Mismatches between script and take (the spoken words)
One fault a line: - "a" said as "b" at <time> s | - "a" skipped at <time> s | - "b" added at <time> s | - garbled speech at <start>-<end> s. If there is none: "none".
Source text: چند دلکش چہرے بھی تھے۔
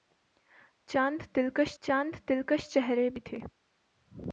- "چند دلکش" added at 1.8 s